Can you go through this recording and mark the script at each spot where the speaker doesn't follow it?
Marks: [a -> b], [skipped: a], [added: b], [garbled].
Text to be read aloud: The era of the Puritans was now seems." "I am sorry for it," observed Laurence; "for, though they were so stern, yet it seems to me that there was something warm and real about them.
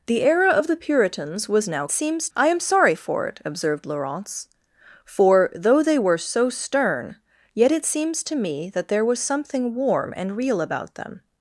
The era of the Puritans was now seems." "I am sorry for it," observed Laurence; "for, though they were so stern, yet it seems to me that there was something warm and real about them.